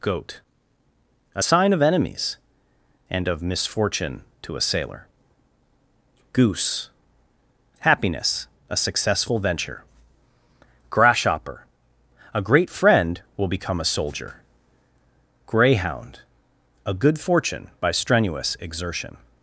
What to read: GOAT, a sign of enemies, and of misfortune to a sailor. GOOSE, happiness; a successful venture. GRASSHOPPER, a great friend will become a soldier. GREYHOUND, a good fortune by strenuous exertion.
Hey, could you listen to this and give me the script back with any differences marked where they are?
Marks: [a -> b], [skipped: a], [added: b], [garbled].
GOAT, a sign of enemies, and of misfortune to a sailor. GOOSE, happiness; a successful venture. GRASSHOPPER, a great friend will become a soldier. GREYHOUND, a good fortune by strenuous exertion.